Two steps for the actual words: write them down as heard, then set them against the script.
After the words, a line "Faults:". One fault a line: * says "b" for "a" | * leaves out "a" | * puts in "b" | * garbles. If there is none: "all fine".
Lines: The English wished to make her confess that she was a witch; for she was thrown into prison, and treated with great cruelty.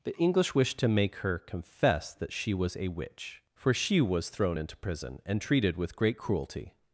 The English wished to make her confess that she was a witch; for she was thrown into prison, and treated with great cruelty.
Faults:
all fine